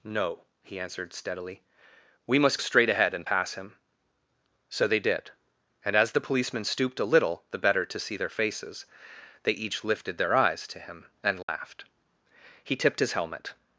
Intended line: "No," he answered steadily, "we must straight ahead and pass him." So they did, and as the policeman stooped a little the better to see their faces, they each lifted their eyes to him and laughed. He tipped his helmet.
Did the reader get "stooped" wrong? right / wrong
right